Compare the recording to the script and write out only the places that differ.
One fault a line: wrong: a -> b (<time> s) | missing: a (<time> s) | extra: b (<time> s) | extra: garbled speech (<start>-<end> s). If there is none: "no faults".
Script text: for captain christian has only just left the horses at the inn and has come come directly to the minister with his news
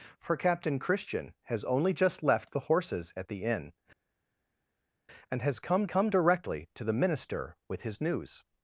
no faults